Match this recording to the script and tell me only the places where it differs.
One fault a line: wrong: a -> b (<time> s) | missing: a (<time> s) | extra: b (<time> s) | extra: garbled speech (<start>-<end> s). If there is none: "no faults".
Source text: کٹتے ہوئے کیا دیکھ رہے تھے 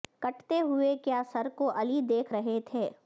extra: سر کو علی (1.3 s)